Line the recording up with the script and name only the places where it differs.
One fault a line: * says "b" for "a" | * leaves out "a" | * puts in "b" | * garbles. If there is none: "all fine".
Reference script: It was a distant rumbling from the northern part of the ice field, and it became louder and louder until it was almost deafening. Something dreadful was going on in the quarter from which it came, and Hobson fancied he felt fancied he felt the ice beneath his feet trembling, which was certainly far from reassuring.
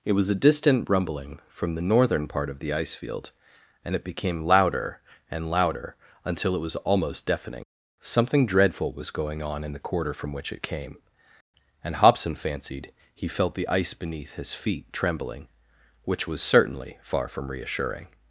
* leaves out "fancied he felt"